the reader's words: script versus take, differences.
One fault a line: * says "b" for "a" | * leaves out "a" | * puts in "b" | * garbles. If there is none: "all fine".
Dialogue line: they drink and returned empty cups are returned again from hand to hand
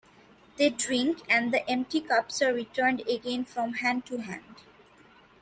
* says "the" for "returned"